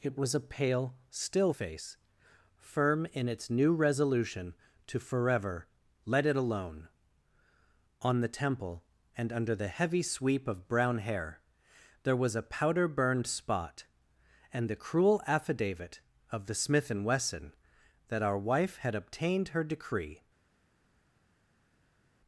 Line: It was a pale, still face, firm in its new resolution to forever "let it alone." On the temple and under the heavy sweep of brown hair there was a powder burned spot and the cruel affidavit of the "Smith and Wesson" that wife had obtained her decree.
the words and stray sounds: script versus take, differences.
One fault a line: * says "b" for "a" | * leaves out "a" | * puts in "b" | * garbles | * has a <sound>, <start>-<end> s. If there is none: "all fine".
* puts in "our"